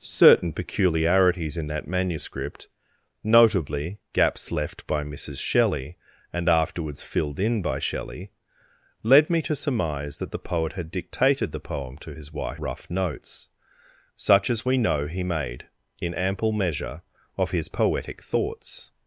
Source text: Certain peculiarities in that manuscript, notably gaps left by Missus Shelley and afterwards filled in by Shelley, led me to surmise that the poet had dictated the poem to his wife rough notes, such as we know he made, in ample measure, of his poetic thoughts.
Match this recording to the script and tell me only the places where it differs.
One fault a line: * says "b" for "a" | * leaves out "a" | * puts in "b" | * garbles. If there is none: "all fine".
all fine